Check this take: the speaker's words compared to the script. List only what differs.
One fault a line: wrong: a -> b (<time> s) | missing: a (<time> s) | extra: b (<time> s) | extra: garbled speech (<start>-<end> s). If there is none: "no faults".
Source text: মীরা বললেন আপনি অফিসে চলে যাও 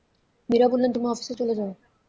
wrong: আপনি -> তুমি (0.9 s)